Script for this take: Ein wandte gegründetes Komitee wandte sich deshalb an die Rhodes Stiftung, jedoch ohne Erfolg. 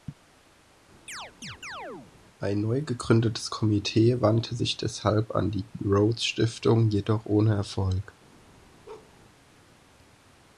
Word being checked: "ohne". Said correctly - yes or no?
yes